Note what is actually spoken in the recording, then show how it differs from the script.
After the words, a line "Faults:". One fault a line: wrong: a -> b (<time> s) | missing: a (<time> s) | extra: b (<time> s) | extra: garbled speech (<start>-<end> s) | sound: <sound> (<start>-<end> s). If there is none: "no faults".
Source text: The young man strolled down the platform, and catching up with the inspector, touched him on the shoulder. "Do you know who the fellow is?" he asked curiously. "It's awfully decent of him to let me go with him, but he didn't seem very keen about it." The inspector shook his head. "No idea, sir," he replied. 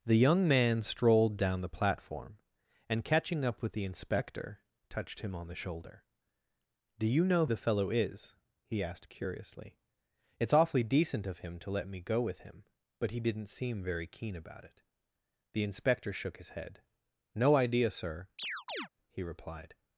The young man strolled down the platform, and catching up with the inspector, touched him on the shoulder. "Do you know the fellow is?" he asked curiously. "It's awfully decent of him to let me go with him, but he didn't seem very keen about it." The inspector shook his head. "No idea, sir," he replied.
Faults:
missing: who (7.5 s)
sound: chirp (18.4-18.9 s)